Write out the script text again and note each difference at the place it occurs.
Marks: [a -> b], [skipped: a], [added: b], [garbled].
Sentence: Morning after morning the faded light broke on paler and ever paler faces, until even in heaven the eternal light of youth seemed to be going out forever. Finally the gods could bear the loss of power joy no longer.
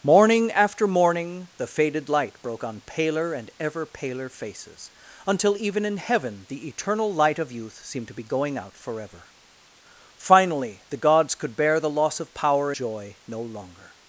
Morning after morning the faded light broke on paler and ever paler faces, until even in heaven the eternal light of youth seemed to be going out forever. Finally the gods could bear the loss of power joy no longer.